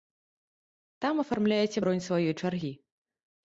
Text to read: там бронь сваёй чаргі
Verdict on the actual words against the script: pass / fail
fail